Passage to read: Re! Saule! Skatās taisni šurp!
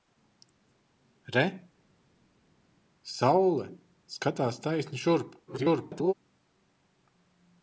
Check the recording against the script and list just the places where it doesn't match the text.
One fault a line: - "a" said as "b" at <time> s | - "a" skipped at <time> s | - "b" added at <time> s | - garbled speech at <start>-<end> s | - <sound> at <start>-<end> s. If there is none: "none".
- garbled speech at 5.5-6.1 s